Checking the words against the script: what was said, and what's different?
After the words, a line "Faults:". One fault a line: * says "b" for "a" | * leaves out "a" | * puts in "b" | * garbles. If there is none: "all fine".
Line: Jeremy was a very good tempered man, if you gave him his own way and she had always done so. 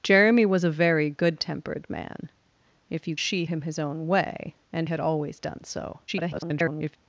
Jeremy was a very good tempered man, if you she him his own way and had always done so. [garbled]
Faults:
* says "she" for "gave"
* leaves out "she"
* garbles